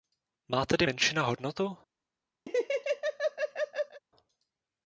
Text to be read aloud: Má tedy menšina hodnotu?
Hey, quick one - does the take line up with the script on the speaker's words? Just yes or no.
yes